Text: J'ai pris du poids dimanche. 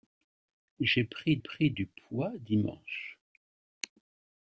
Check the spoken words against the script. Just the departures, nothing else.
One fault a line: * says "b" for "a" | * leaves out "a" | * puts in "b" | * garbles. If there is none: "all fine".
* puts in "pris"